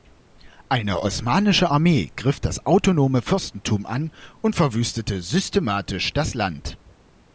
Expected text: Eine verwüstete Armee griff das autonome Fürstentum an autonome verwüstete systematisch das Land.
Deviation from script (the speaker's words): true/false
true